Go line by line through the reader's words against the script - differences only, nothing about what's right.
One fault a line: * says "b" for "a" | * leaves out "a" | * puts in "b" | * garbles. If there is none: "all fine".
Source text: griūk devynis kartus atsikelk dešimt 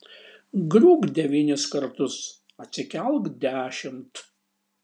all fine